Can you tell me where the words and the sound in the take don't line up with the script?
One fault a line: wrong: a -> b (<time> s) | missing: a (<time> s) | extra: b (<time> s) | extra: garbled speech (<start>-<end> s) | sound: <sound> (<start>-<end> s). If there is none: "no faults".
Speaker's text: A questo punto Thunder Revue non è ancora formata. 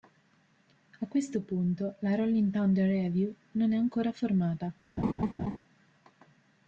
extra: la Rolling (2.0 s)
sound: laugh (5.0-5.6 s)